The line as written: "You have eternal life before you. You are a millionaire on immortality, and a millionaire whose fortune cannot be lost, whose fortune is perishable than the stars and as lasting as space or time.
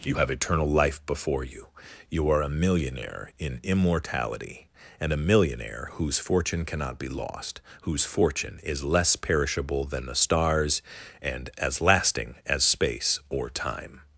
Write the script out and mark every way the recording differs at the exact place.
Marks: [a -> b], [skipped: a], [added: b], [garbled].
"You have eternal life before you. You are a millionaire [on -> in] immortality, and a millionaire whose fortune cannot be lost, whose fortune is [added: less] perishable than the stars and as lasting as space or time.